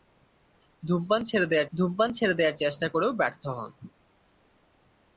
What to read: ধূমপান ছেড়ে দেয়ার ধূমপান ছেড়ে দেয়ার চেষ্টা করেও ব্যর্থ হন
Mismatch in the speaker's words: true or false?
false